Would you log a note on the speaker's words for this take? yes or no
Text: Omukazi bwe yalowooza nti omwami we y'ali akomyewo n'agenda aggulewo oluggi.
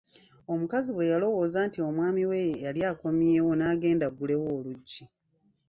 no